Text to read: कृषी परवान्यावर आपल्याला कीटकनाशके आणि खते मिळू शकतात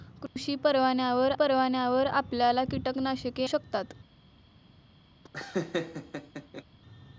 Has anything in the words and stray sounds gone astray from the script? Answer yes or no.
yes